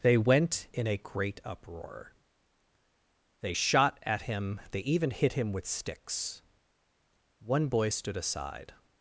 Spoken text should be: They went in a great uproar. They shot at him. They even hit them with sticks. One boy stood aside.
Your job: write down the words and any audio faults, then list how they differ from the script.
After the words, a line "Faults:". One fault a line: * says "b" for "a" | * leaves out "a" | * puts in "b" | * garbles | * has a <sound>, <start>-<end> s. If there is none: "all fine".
They went in a great uproar. They shot at him. They even hit him with sticks. One boy stood aside.
Faults:
* says "him" for "them"